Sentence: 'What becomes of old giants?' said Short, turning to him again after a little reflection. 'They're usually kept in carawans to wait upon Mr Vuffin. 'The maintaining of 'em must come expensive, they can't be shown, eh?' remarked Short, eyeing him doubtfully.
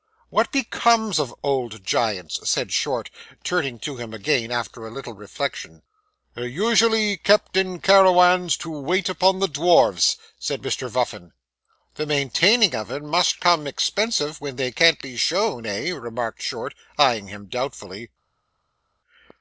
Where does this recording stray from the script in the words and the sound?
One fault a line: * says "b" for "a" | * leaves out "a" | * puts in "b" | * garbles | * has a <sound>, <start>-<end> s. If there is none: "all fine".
* puts in "the dwarfs said"
* puts in "when"